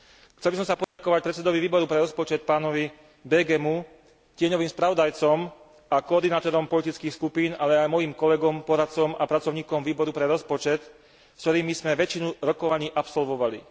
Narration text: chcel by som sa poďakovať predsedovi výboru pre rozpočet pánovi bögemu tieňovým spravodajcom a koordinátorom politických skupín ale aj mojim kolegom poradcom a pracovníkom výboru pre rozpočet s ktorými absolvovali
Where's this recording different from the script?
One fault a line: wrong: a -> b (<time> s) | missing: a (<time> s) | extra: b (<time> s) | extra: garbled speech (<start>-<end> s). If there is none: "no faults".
extra: sme väčšinu rokovaní (11.7 s)